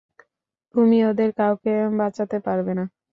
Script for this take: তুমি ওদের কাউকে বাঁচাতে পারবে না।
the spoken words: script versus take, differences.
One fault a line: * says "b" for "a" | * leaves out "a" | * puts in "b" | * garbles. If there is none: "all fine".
all fine